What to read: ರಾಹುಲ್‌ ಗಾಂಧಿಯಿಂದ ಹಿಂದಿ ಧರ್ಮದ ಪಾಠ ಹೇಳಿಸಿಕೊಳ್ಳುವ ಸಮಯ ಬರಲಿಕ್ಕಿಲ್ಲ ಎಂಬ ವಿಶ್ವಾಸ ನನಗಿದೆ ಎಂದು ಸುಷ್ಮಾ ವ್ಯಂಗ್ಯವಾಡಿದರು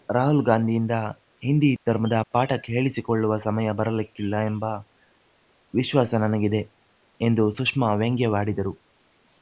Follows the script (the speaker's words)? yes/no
yes